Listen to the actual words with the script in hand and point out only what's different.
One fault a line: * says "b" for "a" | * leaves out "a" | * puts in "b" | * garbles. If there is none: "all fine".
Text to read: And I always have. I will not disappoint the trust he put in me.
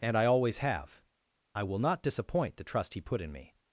all fine